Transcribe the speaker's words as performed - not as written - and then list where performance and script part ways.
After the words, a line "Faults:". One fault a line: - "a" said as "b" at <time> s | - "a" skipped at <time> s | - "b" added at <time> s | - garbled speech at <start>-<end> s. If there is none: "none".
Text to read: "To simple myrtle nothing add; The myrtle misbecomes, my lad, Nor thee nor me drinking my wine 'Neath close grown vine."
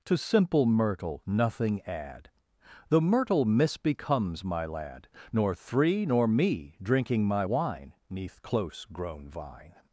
"To simple myrtle nothing add; The myrtle misbecomes, my lad, Nor three nor me drinking my wine 'Neath close grown vine."
Faults:
- "thee" said as "three" at 5.5 s